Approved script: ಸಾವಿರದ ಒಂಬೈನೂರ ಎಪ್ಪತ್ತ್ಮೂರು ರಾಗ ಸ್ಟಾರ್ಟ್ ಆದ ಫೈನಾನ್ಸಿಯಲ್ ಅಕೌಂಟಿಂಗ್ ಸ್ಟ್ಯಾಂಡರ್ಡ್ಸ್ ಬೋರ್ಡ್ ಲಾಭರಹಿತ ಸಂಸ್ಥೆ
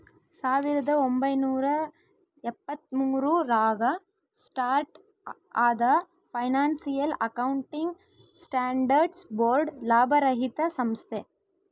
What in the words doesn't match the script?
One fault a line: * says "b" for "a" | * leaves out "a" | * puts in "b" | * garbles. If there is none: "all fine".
all fine